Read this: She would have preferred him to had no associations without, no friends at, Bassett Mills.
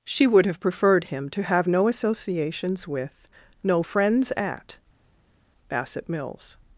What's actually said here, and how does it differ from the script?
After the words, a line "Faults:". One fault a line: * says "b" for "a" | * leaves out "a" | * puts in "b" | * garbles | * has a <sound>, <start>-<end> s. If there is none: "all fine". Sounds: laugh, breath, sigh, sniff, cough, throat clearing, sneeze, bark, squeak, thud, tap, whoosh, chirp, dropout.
She would have preferred him to have no associations with, no friends at, Bassett Mills.
Faults:
* says "have" for "had"
* says "with" for "without"